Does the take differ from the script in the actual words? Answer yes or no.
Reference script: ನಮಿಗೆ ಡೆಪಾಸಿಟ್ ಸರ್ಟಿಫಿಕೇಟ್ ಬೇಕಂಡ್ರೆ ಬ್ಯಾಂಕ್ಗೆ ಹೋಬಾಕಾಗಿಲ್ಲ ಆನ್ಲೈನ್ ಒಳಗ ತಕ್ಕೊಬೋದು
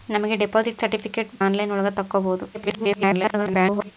yes